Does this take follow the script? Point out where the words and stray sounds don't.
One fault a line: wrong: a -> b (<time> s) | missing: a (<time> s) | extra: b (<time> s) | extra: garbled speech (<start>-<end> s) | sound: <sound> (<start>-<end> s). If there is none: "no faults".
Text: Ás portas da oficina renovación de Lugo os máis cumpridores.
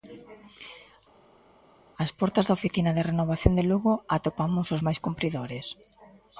extra: de (2.9 s)
extra: atopamos (4.2 s)